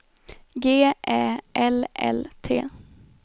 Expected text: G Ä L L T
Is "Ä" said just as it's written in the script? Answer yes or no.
yes